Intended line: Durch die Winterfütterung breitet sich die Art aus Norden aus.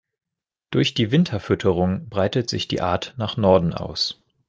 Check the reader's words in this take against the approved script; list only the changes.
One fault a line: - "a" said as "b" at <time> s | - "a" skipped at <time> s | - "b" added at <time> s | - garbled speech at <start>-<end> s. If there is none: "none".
- "aus" said as "nach" at 3.2 s